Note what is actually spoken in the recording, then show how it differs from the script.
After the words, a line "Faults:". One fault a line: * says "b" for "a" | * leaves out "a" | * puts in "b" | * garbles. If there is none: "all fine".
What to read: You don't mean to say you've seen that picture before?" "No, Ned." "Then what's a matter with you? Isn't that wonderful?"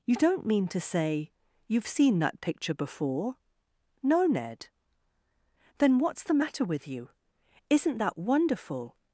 You don't mean to say you've seen that picture before?" "No, Ned." "Then what's the matter with you? Isn't that wonderful?"
Faults:
* says "the" for "a"